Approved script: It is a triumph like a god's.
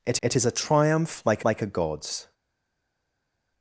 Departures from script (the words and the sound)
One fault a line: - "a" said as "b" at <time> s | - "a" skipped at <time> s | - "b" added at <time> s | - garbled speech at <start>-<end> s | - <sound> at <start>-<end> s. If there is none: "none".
- "it" added at 0.2 s
- "like" added at 1.4 s